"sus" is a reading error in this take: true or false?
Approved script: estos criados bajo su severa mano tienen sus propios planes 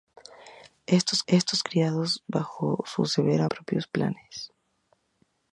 true